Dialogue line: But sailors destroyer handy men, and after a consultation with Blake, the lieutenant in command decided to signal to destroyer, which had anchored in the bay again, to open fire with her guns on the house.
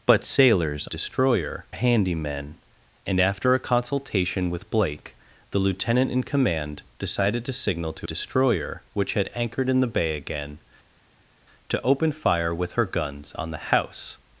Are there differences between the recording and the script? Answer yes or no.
no